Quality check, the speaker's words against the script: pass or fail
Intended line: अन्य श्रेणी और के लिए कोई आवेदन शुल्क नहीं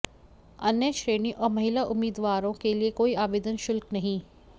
fail